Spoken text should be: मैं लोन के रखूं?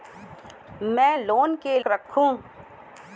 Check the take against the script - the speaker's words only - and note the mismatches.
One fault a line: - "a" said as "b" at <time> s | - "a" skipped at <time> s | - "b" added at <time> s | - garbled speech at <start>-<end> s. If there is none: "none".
none